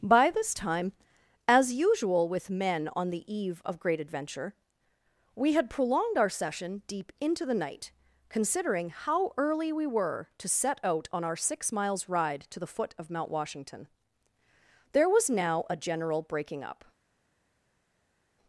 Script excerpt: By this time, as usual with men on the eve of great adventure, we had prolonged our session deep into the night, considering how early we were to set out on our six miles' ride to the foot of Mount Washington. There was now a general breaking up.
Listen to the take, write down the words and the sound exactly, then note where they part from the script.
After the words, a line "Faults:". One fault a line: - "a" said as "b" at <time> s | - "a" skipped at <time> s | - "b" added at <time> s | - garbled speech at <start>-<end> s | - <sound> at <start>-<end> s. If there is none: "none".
By this time, as usual with men on the eve of great adventure, we had prolonged our session deep into the night, considering how early we were to set out on our six miles' ride to the foot of Mount Washington. There was now a general breaking up.
Faults:
none